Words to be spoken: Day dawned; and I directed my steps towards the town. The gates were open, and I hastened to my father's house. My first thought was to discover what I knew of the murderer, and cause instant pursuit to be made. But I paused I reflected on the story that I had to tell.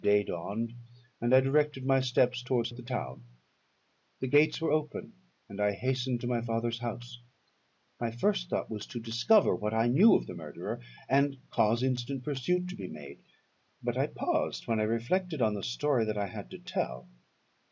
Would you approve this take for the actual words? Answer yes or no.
no